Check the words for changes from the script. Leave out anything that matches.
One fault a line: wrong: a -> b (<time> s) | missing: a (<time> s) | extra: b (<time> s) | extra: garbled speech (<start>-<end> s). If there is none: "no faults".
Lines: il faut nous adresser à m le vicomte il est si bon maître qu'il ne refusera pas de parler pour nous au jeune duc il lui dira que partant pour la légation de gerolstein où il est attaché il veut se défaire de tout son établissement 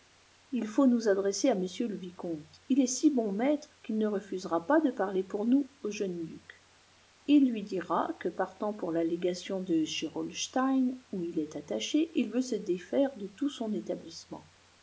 no faults